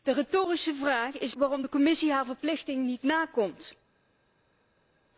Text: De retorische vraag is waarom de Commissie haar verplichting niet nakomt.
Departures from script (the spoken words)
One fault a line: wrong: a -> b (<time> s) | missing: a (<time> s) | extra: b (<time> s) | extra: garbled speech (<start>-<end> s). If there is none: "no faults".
no faults